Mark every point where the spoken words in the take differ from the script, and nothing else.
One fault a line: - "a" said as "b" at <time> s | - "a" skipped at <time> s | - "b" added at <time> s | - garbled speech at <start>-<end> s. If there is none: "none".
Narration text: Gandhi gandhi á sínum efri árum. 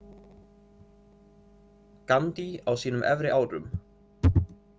- "gandhi" skipped at 2.5 s